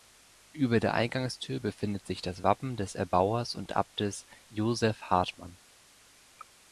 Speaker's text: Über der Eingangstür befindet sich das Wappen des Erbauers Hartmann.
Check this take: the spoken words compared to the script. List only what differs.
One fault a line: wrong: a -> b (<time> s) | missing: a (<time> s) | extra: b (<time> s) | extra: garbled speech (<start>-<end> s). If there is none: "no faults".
extra: und Abtes Joseph (3.5 s)